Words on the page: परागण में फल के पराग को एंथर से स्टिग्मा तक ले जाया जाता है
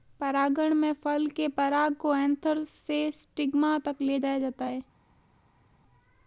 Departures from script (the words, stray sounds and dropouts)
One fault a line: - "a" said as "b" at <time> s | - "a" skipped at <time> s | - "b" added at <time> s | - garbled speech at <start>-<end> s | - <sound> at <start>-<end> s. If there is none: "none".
none